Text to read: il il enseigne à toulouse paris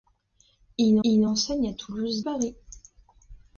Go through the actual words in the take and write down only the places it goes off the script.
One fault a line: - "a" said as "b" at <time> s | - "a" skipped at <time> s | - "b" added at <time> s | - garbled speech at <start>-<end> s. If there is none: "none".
none